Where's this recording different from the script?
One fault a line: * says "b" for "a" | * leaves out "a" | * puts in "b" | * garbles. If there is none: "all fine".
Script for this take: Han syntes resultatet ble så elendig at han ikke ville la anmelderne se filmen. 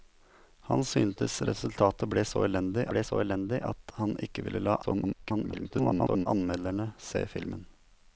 * puts in "ble så elendig"
* garbles